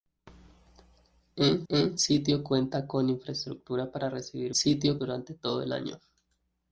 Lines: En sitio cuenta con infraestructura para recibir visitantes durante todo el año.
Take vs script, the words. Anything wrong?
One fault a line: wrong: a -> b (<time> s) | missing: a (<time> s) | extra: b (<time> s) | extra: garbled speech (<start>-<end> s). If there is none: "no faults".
extra: en (1.7 s)
wrong: visitantes -> sitio (4.5 s)